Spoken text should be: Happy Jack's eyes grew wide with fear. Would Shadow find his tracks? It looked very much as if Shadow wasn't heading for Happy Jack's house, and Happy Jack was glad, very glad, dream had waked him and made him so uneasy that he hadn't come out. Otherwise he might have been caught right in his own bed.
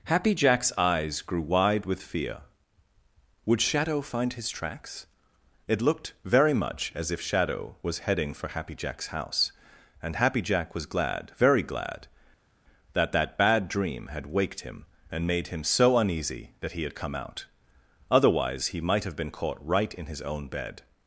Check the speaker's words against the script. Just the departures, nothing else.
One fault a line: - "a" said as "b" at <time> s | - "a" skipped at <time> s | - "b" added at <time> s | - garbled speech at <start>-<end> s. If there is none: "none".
- "wasn't" said as "was" at 7.8 s
- "that that bad" added at 12.9 s
- "hadn't" said as "had" at 16.8 s